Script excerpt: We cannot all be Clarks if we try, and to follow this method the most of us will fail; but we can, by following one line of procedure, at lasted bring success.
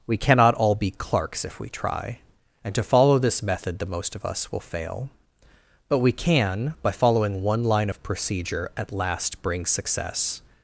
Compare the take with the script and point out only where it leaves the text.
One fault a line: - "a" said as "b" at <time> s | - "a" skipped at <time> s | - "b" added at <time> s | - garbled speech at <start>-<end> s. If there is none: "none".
- "lasted" said as "last" at 8.9 s